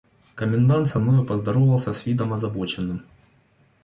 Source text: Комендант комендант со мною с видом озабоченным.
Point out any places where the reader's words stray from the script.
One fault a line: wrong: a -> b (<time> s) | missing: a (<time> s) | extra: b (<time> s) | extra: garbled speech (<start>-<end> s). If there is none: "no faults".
missing: комендант (0.9 s)
extra: поздоровался (1.3 s)